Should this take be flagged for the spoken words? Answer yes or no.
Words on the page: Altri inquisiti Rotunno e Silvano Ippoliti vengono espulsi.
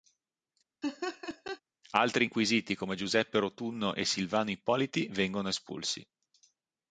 yes